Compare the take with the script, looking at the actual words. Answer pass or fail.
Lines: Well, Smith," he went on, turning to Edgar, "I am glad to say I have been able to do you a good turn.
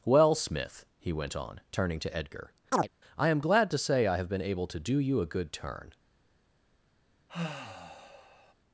pass